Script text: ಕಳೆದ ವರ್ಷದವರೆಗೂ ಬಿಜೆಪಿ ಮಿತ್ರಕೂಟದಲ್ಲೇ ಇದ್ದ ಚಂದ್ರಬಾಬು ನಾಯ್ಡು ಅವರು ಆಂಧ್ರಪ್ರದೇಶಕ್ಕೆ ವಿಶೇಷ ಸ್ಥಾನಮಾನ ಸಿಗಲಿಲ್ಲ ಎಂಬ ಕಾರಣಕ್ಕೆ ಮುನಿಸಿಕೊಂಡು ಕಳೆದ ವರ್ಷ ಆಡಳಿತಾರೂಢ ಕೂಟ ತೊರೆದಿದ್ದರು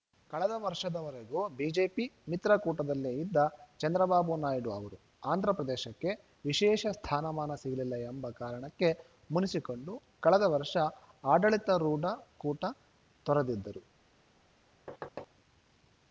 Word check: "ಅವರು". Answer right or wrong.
right